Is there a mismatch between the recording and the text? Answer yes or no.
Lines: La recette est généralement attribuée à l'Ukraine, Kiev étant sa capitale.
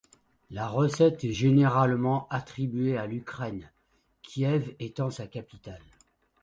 no